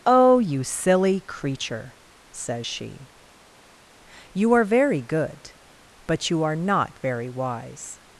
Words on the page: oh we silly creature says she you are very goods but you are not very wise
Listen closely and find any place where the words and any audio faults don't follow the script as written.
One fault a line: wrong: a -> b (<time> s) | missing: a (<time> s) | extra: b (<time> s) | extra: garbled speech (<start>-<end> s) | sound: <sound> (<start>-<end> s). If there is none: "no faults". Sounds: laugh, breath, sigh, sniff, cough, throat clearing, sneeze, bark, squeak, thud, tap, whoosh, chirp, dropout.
wrong: we -> you (0.4 s)
wrong: goods -> good (5.0 s)